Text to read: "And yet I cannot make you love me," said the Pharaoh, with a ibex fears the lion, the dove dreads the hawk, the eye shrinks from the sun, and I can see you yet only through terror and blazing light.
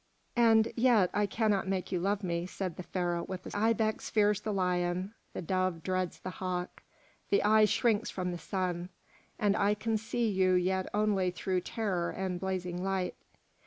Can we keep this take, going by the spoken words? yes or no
yes